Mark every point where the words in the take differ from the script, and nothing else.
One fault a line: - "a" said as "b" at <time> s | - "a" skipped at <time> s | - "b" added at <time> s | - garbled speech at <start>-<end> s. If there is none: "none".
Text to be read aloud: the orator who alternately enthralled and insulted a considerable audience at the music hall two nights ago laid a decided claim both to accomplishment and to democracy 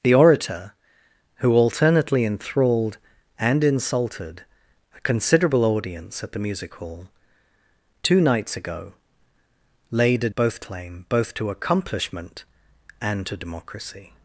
- "decided" said as "both" at 10.3 s